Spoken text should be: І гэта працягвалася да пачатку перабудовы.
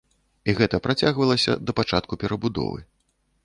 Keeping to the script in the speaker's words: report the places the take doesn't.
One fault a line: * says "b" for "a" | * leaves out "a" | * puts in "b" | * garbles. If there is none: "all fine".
all fine